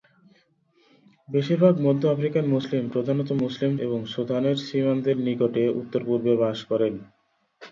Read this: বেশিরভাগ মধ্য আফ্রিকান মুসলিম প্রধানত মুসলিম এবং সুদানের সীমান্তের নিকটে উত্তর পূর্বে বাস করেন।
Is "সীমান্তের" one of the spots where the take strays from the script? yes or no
no